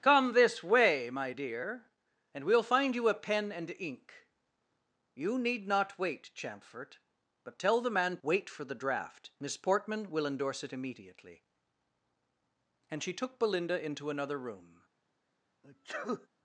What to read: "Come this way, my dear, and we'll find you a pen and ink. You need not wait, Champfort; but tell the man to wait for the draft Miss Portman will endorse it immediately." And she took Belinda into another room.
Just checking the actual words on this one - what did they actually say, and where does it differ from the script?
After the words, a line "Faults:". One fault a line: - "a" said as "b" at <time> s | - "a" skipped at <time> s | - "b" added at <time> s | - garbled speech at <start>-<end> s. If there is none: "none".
"Come this way, my dear, and we'll find you a pen and ink. You need not wait, Champfort; but tell the man wait for the draft Miss Portman will endorse it immediately." And she took Belinda into another room.
Faults:
- "to" skipped at 8.2 s